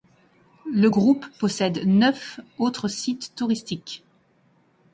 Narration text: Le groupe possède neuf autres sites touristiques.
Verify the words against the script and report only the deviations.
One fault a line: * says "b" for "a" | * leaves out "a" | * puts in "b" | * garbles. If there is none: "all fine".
all fine